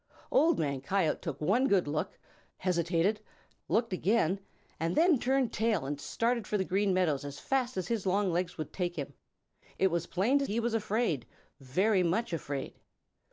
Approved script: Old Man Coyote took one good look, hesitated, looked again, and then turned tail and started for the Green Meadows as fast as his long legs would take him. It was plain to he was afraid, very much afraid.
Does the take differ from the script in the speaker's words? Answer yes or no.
no